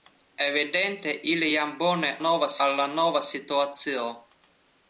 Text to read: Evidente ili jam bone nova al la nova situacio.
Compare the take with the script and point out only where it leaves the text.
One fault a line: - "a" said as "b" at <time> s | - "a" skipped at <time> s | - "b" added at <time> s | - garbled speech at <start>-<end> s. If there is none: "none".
none